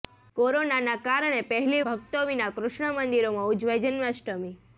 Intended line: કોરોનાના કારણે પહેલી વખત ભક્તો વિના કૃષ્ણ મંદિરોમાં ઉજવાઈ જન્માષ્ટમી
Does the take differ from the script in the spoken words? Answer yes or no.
yes